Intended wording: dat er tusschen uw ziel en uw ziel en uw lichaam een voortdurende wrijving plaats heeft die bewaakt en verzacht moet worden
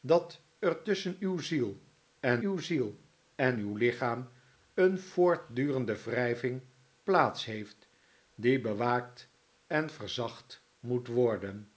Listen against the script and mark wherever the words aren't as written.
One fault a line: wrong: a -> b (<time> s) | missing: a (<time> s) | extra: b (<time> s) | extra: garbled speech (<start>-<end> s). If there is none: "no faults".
no faults